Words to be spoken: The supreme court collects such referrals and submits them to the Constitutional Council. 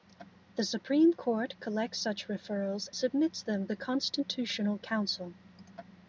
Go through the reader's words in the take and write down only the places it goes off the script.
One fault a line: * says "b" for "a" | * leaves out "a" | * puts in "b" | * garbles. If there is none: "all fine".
* leaves out "and"
* leaves out "to"